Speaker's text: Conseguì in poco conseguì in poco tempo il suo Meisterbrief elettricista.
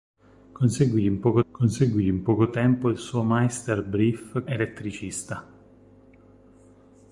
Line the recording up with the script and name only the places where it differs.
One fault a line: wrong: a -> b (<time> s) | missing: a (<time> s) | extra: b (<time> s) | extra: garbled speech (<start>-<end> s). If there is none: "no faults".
no faults